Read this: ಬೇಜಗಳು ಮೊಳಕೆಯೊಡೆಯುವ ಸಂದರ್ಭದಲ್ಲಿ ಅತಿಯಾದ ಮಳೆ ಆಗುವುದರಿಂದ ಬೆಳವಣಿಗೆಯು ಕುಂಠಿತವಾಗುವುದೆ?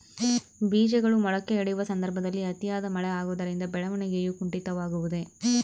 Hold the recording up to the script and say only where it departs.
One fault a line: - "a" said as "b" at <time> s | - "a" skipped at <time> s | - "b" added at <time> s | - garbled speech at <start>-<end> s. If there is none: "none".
none